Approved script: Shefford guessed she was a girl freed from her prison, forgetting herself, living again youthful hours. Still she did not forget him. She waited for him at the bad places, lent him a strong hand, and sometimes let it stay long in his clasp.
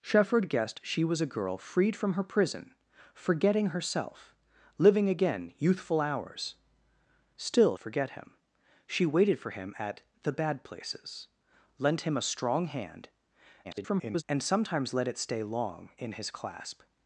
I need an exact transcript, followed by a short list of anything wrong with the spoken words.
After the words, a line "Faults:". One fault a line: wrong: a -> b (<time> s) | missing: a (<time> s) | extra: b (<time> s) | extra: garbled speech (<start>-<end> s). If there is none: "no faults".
Shefford guessed she was a girl freed from her prison, forgetting herself, living again youthful hours. Still forget him. She waited for him at the bad places, lent him a strong hand, [garbled] and sometimes let it stay long in his clasp.
Faults:
missing: she did not (7.8 s)
extra: garbled speech (13.6-14.2 s)